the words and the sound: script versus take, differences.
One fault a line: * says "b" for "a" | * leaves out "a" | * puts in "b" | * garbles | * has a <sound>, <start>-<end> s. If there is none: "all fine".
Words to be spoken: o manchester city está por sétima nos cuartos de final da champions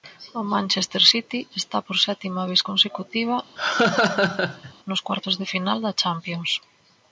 * puts in "vez consecutiva"
* has a laugh, 3.6-4.7 s